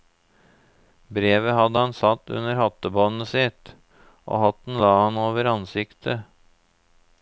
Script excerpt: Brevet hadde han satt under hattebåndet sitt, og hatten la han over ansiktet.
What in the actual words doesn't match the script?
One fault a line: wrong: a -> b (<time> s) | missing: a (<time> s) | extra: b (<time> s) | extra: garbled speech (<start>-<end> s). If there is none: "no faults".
no faults